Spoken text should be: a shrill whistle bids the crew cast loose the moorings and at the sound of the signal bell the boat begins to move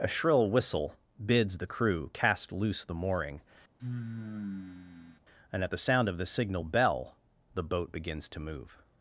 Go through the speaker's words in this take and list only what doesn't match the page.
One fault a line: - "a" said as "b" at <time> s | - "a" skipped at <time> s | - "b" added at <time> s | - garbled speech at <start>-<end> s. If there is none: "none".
- "moorings" said as "mooring" at 3.0 s